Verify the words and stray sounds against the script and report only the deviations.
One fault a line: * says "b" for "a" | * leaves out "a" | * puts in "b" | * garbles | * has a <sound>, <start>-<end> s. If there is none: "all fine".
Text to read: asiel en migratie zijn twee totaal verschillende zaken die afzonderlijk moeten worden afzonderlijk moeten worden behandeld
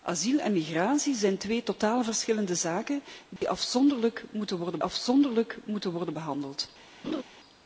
* has a dropout, 3.4-3.4 s
* has a laugh, 7.0-7.2 s